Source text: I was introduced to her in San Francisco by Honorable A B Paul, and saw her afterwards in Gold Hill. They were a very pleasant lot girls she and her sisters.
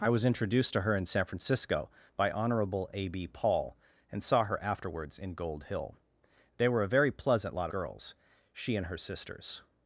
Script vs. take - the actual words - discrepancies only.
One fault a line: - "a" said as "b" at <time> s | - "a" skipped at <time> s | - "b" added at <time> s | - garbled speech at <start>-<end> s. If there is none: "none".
none